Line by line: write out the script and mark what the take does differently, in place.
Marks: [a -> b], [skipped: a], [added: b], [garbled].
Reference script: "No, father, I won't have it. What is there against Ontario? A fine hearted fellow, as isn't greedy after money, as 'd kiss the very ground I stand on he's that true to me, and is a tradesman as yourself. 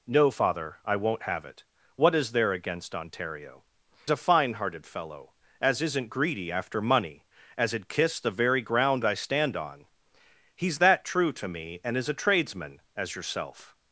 "No, father, I won't have it. What is there against Ontario? A fine hearted fellow, as isn't greedy after money, as 'd kiss the very ground I stand on he's that true to me, and is a tradesman as yourself.